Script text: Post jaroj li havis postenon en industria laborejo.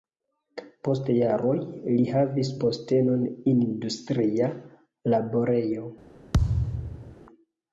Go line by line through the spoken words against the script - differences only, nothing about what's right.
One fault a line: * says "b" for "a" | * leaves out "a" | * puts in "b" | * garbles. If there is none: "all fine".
* leaves out "en"